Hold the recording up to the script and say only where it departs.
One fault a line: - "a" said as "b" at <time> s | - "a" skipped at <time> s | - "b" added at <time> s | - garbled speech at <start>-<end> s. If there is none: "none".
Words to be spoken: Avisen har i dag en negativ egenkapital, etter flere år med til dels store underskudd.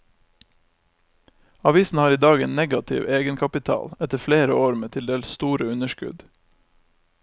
none